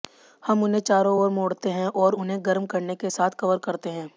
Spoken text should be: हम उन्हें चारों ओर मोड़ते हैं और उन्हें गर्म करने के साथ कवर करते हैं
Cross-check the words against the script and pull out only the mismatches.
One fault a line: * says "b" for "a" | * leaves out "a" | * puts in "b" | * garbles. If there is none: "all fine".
all fine